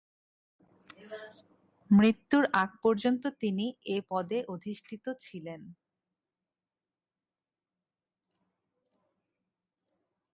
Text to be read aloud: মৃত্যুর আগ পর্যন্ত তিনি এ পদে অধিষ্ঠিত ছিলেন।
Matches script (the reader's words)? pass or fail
pass